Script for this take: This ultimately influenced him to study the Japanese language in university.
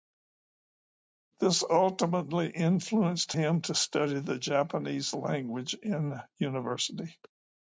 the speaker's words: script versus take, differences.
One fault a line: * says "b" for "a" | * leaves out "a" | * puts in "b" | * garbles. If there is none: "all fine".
all fine